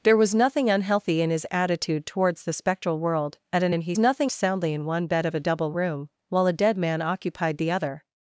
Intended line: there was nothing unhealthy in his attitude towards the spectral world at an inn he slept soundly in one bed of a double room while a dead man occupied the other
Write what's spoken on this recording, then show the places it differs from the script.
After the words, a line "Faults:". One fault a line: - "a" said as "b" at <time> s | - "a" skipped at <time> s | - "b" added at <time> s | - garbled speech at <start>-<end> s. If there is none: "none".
there was nothing unhealthy in his attitude towards the spectral world at an inn he nothing soundly in one bed of a double room while a dead man occupied the other
Faults:
- "slept" said as "nothing" at 4.0 s